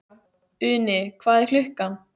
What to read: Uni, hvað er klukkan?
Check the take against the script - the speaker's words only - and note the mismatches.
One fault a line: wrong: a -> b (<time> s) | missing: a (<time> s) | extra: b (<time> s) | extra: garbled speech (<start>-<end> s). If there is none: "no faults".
no faults